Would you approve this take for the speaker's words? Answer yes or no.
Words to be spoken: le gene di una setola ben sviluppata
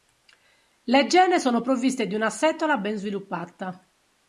no